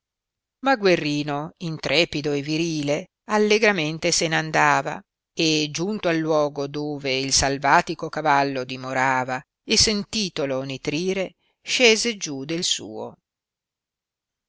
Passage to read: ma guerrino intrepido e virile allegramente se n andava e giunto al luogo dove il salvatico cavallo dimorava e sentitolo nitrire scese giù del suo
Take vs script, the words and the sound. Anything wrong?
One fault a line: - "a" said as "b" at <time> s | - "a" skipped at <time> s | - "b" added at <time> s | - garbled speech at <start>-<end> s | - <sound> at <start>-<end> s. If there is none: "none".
none